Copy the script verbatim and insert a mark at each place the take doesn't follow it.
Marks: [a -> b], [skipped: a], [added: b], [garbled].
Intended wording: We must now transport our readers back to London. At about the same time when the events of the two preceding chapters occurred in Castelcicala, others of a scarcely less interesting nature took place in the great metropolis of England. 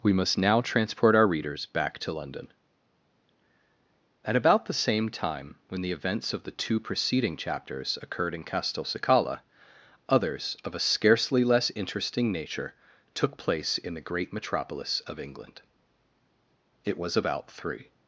We must now transport our readers back to London. At about the same time when the events of the two preceding chapters occurred in Castelcicala, others of a scarcely less interesting nature took place in the great metropolis of England. [added: It was about three]